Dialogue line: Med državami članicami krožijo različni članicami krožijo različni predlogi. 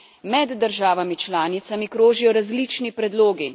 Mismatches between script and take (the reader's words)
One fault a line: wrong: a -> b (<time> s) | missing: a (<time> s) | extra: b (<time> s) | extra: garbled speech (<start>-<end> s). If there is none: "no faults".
missing: članicami krožijo različni (2.9 s)